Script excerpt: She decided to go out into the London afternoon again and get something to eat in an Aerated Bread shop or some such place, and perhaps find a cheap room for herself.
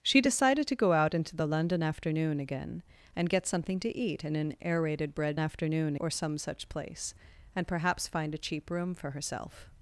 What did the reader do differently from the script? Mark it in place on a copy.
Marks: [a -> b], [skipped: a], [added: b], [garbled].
She decided to go out into the London afternoon again and get something to eat in an Aerated Bread [shop -> afternoon] or some such place, and perhaps find a cheap room for herself.